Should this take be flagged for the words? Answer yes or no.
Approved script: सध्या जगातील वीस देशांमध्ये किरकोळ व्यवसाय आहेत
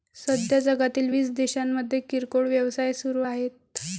yes